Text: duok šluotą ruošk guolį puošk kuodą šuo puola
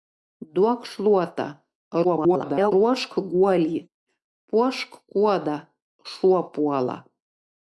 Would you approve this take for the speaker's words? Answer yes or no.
no